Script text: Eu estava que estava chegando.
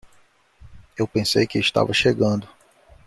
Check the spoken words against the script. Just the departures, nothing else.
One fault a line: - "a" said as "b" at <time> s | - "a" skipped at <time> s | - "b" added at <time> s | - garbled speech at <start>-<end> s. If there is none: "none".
- "estava" said as "pensei" at 1.1 s